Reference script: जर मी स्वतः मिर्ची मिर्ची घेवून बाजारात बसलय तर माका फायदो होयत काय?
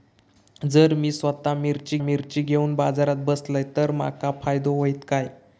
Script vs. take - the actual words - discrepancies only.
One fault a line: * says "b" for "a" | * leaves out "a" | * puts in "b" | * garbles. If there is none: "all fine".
all fine